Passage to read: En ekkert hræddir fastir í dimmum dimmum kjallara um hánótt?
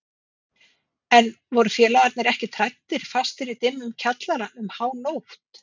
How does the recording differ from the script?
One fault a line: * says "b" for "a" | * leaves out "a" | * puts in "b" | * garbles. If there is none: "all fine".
* puts in "voru félagarnir"
* leaves out "dimmum"